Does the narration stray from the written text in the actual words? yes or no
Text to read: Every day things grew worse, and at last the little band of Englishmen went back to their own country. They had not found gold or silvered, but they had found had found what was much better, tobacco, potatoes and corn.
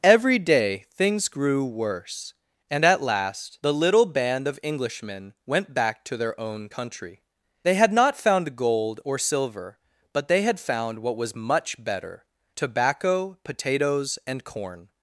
yes